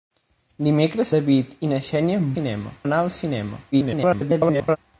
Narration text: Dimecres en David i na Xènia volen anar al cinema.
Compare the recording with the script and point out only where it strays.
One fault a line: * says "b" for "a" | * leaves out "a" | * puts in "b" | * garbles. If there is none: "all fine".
* leaves out "en"
* says "cinema" for "volen"
* garbles